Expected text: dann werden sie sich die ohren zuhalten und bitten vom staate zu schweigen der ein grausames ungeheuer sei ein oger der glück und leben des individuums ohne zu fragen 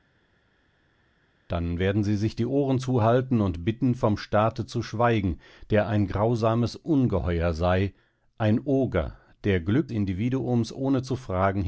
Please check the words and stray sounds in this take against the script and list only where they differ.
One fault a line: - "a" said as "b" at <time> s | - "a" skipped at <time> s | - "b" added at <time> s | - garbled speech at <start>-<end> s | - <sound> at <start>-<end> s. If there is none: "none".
- "und leben des" skipped at 9.9 s